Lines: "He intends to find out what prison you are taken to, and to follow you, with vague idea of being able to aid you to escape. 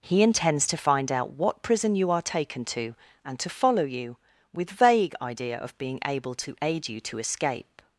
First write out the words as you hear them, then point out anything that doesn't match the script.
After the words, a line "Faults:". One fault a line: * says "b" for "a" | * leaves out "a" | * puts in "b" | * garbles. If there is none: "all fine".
"He intends to find out what prison you are taken to, and to follow you, with vague idea of being able to aid you to escape.
Faults:
all fine